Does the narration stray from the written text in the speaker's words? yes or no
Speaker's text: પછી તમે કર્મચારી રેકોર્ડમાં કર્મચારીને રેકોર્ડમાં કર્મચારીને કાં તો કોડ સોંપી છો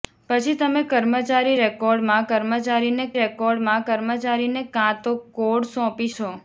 no